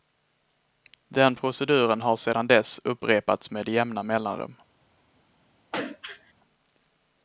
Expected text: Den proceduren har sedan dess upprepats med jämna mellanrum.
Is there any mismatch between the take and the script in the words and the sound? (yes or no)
yes